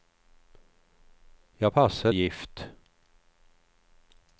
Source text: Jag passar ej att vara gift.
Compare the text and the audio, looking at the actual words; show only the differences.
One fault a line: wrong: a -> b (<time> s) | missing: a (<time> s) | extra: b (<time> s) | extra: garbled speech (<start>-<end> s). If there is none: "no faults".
missing: ej att vara (2.1 s)